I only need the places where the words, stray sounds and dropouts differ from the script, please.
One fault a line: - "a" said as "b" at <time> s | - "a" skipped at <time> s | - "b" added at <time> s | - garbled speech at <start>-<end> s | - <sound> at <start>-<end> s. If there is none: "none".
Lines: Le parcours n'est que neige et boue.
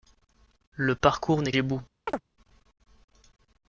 - "que neige" skipped at 1.5 s
- chirp at 2.1-2.2 s